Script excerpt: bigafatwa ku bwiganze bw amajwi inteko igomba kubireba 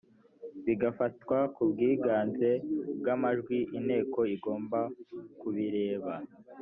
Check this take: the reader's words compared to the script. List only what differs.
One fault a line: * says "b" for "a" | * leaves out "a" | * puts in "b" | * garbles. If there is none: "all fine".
all fine